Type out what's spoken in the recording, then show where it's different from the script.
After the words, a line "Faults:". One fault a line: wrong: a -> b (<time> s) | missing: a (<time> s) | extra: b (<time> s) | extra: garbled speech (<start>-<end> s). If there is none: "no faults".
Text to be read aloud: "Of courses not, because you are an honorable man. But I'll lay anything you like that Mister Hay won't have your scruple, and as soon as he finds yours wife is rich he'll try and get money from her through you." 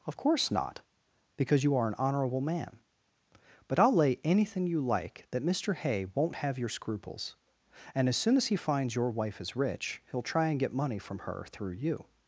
"Of course not, because you are an honorable man. But I'll lay anything you like that Mister Hay won't have your scruples, and as soon as he finds your wife is rich he'll try and get money from her through you."
Faults:
wrong: courses -> course (0.2 s)
wrong: scruple -> scruples (6.7 s)
wrong: yours -> your (8.9 s)